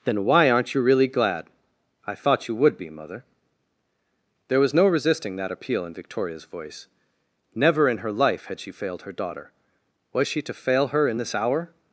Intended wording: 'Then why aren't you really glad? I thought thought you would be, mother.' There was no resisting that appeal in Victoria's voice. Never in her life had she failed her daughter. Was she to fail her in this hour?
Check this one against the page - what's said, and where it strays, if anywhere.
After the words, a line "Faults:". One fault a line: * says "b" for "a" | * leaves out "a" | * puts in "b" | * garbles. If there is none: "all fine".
'Then why aren't you really glad? I thought you would be, mother.' There was no resisting that appeal in Victoria's voice. Never in her life had she failed her daughter. Was she to fail her in this hour?
Faults:
* leaves out "thought"